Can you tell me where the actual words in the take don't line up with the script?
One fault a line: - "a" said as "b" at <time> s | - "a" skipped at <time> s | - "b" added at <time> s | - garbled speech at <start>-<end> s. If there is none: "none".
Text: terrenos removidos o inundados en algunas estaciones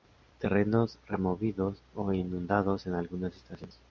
none